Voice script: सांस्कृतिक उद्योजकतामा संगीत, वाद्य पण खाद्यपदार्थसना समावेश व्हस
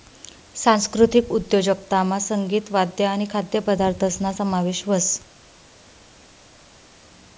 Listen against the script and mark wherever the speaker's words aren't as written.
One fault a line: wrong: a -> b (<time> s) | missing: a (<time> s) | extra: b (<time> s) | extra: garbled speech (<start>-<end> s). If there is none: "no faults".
wrong: पण -> आणि (3.0 s)